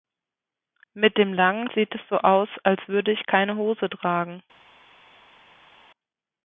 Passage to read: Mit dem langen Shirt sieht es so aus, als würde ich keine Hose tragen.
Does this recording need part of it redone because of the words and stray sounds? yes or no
yes